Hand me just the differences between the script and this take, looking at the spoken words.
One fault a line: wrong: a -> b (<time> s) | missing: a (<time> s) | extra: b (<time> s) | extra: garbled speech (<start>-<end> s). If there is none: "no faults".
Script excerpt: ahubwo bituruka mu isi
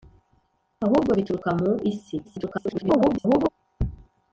extra: garbled speech (2.2-3.5 s)